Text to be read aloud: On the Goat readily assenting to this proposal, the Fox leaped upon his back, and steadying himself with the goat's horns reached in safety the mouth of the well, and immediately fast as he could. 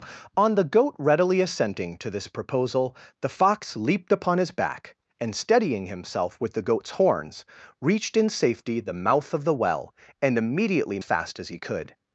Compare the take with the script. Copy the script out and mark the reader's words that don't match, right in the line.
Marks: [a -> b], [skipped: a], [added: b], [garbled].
On the Goat readily assenting to this proposal, the Fox leaped upon his back, and steadying himself with the goat's horns reached in safety the mouth of the well, and immediately fast as he could.